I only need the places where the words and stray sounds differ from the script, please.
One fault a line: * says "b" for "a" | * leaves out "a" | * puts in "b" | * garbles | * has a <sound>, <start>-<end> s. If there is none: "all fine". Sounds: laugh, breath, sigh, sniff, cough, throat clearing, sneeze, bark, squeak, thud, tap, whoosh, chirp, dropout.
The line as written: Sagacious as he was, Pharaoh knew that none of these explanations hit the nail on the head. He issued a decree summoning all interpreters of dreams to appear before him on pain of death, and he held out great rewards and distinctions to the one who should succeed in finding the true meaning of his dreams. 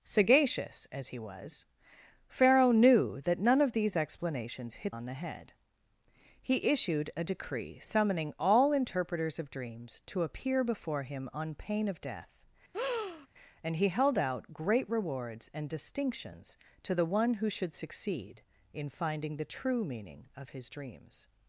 * leaves out "the nail"
* has a breath, 12.7-13.3 s